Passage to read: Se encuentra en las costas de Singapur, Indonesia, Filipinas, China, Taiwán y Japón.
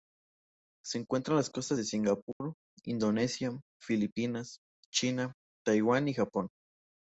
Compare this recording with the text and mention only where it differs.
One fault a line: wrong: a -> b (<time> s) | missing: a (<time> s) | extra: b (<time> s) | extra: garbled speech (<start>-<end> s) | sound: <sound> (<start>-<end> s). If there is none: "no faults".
sound: dropout (2.3-2.4 s)